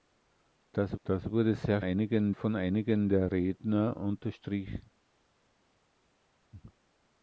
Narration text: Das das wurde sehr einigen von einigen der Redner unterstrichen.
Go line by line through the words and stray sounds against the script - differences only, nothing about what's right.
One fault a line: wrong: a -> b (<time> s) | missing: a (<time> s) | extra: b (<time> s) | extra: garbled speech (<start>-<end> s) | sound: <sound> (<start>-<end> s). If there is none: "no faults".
no faults